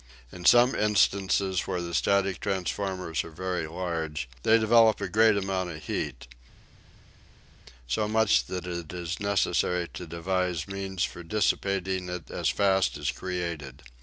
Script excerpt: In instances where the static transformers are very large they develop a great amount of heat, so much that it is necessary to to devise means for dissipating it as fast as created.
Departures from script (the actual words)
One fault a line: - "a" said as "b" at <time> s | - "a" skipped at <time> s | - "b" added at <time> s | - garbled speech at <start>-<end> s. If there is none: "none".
- "some" added at 0.5 s
- "to" skipped at 10.1 s